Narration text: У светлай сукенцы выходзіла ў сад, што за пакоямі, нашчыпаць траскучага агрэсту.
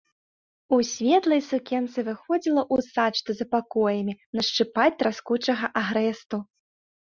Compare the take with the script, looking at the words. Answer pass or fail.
pass